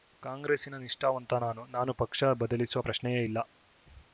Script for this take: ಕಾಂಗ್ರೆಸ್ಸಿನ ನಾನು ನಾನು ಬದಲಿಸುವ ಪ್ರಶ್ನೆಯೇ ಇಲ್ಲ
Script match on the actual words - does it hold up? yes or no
no